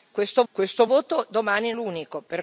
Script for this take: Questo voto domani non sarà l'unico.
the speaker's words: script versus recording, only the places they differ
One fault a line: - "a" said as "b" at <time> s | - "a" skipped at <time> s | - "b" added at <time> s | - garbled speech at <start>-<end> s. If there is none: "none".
- "questo" added at 0.5 s
- "non sarà" skipped at 1.7 s